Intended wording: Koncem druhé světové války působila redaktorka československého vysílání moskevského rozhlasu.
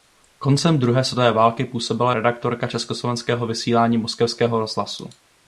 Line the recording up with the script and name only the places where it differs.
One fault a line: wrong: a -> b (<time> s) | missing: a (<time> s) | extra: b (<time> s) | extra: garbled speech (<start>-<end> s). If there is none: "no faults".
no faults